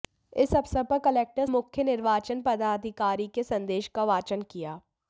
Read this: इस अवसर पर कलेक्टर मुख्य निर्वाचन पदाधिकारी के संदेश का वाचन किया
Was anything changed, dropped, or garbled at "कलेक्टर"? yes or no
no